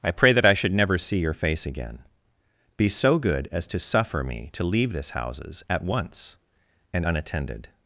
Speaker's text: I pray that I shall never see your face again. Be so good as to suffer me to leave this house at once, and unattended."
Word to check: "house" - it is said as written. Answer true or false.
false